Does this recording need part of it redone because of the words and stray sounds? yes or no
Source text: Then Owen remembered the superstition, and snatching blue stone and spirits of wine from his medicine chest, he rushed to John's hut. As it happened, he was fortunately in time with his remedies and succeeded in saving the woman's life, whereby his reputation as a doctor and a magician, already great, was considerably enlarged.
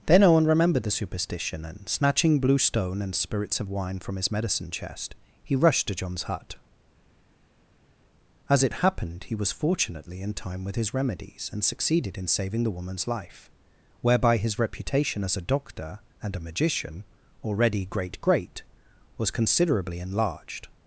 yes